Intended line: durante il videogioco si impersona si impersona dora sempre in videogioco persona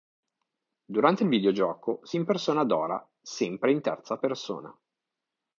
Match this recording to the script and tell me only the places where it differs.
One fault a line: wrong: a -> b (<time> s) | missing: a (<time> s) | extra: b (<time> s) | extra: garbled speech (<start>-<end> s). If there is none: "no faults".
missing: si impersona (2.6 s)
wrong: videogioco -> terza (3.8 s)